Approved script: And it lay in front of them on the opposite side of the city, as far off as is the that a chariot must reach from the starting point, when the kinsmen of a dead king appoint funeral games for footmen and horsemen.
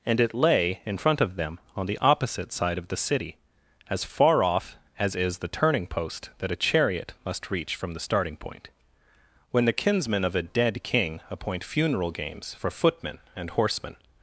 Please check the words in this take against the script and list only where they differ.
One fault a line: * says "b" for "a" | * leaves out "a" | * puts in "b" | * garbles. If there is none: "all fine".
* puts in "turning post"